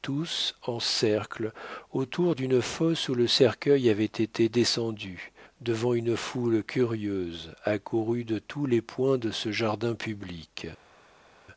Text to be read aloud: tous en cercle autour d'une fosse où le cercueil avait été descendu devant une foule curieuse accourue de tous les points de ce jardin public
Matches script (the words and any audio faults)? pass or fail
pass